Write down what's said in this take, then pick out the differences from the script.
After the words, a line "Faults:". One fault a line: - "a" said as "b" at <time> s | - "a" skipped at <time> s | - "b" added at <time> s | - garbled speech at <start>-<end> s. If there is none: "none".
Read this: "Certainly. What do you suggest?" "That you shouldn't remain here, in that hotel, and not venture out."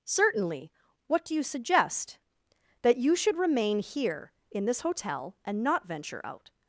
"Certainly. What do you suggest?" "That you should remain here, in this hotel, and not venture out."
Faults:
- "shouldn't" said as "should" at 3.1 s
- "that" said as "this" at 4.7 s